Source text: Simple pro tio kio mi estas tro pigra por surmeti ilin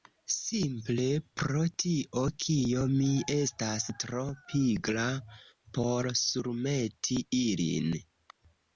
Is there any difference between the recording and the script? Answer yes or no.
no